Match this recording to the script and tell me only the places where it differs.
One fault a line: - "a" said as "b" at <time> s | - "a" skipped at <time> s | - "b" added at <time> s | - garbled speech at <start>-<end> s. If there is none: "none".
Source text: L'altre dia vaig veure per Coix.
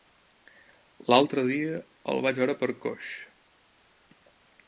- "el" added at 2.1 s